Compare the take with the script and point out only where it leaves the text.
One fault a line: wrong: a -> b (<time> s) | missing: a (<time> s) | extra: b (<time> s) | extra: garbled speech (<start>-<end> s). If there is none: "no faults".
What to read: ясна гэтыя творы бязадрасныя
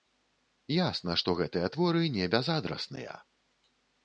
extra: што (1.2 s)
extra: не (2.2 s)